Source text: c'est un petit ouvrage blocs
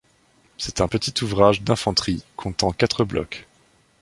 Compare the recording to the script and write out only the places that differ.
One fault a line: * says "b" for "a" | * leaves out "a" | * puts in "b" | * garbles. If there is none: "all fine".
* puts in "d'infanterie comptant quatre"